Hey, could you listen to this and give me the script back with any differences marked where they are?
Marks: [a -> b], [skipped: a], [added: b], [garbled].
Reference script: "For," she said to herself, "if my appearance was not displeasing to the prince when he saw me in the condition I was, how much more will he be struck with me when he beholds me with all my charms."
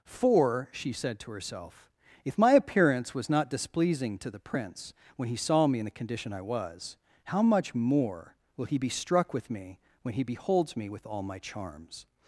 "For," she said to herself, "if my appearance was not displeasing to the prince when he saw me in the condition I was, how much more will he be struck with me when he beholds me with all my charms."